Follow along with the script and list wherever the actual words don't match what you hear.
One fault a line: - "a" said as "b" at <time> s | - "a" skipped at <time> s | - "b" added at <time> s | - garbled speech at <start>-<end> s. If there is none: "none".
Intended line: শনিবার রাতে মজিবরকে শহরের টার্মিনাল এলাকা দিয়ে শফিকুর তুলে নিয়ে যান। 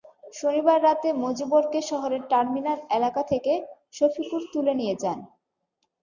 - "দিয়ে" said as "থেকে" at 3.3 s